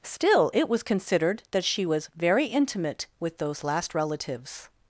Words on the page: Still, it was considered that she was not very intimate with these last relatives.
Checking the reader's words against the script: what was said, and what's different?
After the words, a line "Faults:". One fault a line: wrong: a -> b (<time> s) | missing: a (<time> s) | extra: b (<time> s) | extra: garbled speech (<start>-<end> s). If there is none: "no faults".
Still, it was considered that she was very intimate with those last relatives.
Faults:
missing: not (2.1 s)
wrong: these -> those (3.4 s)